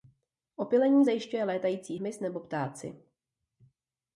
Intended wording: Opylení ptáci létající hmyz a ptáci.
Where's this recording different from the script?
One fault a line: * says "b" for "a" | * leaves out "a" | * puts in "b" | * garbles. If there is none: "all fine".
* says "zajišťuje" for "ptáci"
* says "nebo" for "a"